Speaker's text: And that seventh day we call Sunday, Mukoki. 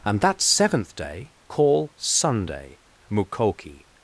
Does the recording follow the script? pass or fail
fail